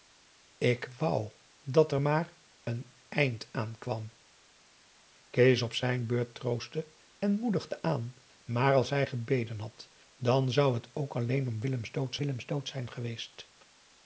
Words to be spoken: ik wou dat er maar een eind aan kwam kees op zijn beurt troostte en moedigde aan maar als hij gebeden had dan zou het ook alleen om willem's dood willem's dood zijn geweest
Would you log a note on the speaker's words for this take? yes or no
no